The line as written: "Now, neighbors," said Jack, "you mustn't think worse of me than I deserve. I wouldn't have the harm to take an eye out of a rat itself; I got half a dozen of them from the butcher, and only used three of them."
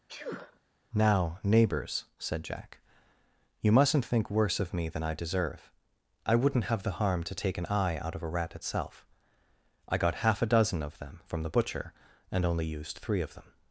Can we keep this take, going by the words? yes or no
yes